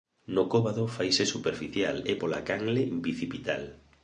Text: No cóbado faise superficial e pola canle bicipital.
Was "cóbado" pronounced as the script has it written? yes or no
yes